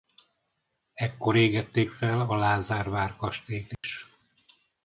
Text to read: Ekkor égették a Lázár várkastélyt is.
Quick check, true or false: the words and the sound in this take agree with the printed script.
false